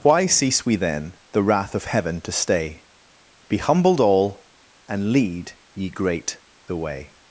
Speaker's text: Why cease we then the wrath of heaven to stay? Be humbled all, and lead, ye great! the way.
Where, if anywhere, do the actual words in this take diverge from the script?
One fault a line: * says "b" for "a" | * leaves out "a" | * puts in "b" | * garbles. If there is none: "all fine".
all fine